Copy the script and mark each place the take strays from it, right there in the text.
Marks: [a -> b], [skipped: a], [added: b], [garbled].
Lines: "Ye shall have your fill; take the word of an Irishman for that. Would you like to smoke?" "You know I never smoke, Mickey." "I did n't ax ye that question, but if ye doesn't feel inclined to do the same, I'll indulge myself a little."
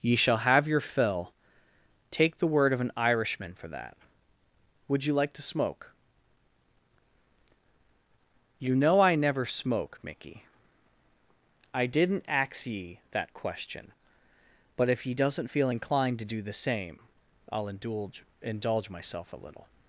"Ye shall have your fill; take the word of an Irishman for that. Would you like to smoke?" "You know I never smoke, Mickey." "I did n't ax ye that question, but if ye doesn't feel inclined to do the same, I'll indulge [added: indulge] myself a little."